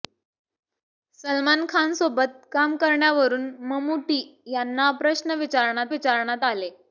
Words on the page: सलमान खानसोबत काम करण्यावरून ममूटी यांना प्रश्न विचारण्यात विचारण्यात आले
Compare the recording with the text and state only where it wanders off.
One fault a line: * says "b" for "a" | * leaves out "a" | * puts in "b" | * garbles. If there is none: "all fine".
all fine